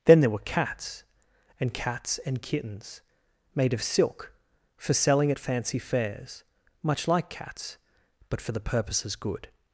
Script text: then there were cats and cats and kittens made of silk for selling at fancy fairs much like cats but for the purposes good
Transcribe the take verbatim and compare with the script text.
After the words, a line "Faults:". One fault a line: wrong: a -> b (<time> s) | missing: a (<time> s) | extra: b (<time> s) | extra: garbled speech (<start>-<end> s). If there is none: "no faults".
then there were cats and cats and kittens made of silk for selling at fancy fairs much like cats but for the purposes good
Faults:
no faults